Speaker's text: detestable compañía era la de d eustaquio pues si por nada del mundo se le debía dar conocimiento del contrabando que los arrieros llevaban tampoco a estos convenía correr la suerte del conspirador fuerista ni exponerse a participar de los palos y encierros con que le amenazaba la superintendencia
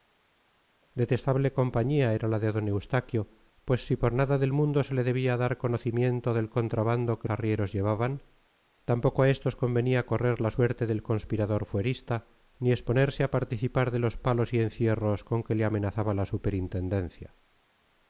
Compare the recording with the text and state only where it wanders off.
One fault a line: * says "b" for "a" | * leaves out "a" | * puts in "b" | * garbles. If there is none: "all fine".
* leaves out "los"